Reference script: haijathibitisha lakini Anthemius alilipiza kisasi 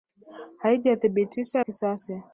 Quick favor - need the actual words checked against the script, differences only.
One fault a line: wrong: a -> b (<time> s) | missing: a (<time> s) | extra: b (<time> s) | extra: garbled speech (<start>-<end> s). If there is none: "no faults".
missing: lakini Anthemius alilipiza (1.6 s)